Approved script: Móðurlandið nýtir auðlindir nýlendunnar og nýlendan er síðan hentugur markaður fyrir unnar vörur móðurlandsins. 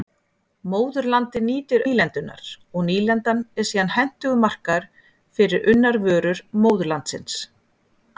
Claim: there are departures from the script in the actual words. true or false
true